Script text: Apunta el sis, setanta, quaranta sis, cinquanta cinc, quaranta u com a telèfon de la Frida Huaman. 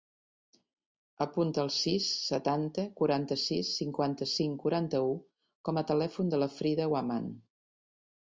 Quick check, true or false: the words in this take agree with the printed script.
true